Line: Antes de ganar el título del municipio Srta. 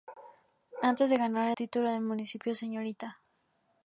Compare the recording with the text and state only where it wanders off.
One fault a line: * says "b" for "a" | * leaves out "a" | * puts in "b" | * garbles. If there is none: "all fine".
* leaves out "el"